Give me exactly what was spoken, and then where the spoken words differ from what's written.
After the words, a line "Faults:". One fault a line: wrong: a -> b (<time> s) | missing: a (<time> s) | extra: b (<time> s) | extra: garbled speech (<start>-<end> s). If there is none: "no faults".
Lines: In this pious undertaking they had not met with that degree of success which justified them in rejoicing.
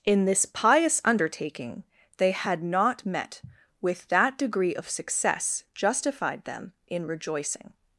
In this pious undertaking they had not met with that degree of success justified them in rejoicing.
Faults:
missing: which (5.6 s)